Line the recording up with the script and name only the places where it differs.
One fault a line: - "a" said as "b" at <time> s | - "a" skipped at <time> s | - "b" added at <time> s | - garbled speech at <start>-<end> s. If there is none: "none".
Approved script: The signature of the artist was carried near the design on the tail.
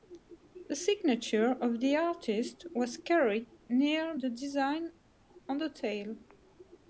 none